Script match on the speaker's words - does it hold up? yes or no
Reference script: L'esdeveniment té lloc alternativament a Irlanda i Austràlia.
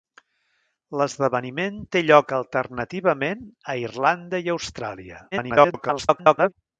no